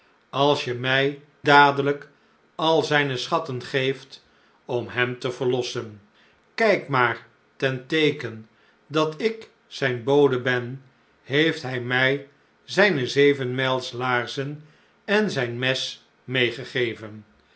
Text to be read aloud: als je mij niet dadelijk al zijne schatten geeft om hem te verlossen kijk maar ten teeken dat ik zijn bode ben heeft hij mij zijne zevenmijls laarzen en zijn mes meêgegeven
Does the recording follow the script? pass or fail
fail